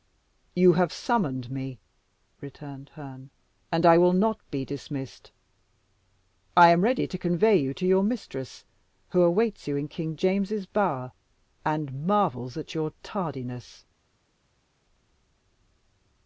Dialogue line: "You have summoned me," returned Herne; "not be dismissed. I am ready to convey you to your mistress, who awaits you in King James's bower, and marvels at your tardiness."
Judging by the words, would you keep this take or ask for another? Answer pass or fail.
fail